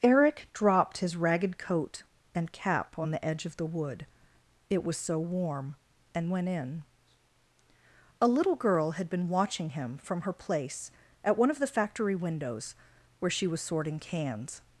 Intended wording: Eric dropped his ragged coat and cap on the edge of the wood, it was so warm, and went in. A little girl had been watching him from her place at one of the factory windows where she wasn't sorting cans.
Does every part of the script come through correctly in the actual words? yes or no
no